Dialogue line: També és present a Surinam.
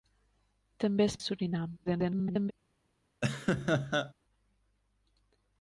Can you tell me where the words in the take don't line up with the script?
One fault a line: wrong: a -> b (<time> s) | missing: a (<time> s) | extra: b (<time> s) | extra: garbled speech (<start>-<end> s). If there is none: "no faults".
missing: present (1.2 s)
extra: garbled speech (1.9-2.5 s)